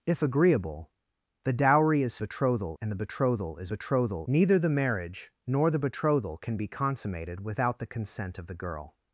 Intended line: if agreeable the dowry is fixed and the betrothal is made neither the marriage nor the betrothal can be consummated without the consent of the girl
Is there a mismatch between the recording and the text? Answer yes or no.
yes